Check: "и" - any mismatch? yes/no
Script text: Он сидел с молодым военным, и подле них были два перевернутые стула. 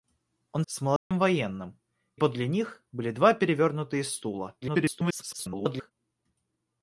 yes